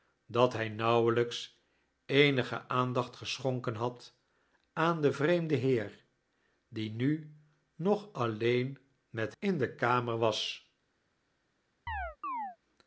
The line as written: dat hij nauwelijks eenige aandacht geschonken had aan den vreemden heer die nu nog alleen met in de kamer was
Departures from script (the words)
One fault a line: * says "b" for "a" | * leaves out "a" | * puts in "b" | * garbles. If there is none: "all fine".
all fine